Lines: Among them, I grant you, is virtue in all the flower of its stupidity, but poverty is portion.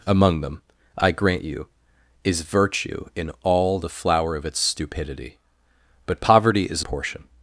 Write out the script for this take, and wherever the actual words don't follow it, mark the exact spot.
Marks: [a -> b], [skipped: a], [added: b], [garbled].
Among them, I grant you, is virtue in all the flower of its stupidity, but poverty is portion.